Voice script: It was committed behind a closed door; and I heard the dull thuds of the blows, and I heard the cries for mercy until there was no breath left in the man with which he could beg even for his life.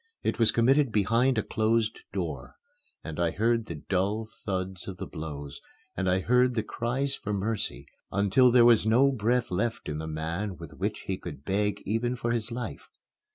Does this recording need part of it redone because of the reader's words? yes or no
no